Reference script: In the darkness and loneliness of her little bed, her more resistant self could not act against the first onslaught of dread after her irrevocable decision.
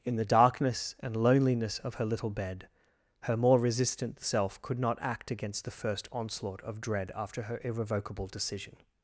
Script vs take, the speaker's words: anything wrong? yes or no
no